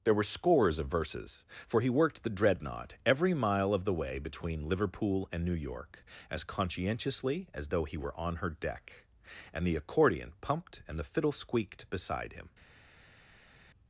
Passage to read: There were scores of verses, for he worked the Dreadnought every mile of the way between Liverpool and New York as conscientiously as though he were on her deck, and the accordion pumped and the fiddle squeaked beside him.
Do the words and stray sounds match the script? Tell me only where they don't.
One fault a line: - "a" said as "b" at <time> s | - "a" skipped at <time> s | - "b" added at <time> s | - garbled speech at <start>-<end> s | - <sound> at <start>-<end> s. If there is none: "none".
none